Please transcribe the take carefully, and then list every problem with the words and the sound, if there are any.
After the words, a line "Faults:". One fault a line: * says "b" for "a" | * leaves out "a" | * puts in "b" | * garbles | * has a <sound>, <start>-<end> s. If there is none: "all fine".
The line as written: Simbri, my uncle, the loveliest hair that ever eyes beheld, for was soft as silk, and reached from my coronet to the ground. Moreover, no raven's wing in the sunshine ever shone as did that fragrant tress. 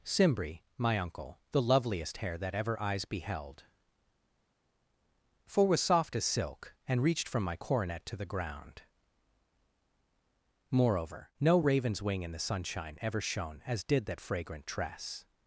Simbri, my uncle, the loveliest hair that ever eyes beheld, for was soft as silk, and reached from my coronet to the ground. Moreover, no raven's wing in the sunshine ever shone as did that fragrant tress.
Faults:
all fine